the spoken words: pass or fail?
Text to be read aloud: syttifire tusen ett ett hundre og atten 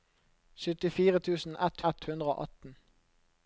pass